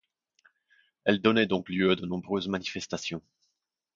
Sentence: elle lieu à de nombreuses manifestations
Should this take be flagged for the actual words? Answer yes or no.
yes